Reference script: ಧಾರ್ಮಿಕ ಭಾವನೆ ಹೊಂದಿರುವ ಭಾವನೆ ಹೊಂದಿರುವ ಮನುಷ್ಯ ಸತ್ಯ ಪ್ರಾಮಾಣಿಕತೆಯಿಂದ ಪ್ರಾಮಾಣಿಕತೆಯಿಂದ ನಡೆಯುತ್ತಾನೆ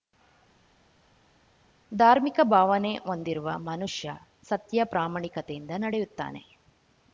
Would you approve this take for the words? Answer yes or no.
no